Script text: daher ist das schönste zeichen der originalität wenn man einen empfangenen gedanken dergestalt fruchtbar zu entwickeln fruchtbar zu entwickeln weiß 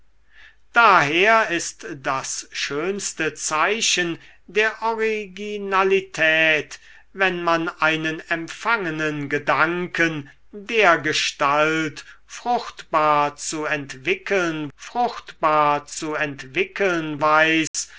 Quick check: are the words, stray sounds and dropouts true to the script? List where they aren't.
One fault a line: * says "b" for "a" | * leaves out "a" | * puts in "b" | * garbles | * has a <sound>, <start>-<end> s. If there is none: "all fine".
* has a dropout, 17.7-17.7 s